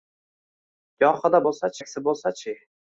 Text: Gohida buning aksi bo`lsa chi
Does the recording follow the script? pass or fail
fail